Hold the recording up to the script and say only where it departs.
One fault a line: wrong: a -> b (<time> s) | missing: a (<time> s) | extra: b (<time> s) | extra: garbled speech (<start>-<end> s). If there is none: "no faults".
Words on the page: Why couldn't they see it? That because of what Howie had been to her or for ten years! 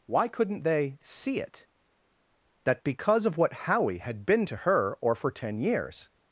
no faults